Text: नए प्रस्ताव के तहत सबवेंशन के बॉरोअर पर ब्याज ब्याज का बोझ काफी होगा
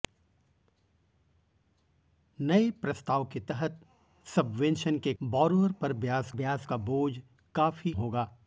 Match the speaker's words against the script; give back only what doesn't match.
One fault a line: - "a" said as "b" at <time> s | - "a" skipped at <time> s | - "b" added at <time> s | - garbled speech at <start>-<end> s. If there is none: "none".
none